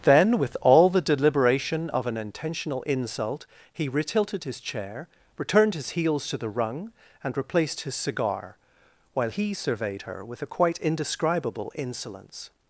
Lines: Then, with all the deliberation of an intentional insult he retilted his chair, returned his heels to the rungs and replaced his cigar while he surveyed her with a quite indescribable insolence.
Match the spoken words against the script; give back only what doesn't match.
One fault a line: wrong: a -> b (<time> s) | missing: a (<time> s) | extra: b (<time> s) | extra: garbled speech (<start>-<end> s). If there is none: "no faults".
wrong: rungs -> rung (6.5 s)